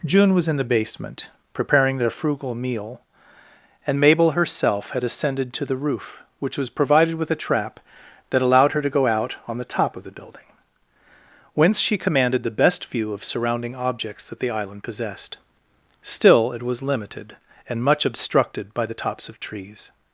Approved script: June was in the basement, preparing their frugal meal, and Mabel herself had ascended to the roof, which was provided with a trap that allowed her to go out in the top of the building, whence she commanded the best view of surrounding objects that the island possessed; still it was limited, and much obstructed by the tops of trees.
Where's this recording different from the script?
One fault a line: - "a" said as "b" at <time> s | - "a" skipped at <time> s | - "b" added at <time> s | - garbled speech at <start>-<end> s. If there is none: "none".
- "in" said as "on" at 9.5 s